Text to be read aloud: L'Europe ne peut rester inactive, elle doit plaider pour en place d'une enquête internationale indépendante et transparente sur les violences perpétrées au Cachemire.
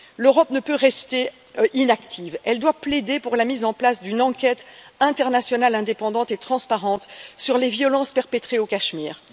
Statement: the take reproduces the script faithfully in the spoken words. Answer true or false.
false